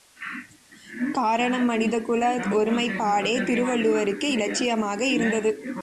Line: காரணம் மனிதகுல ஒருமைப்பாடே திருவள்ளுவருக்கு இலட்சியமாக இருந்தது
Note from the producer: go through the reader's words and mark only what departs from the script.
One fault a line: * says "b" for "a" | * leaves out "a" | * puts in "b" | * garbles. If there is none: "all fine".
all fine